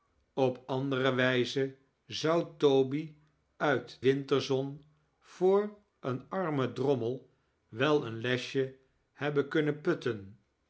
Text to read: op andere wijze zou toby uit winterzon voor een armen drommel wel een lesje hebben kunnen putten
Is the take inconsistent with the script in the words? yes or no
no